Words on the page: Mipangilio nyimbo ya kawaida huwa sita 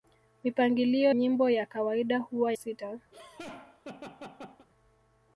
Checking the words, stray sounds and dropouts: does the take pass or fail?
fail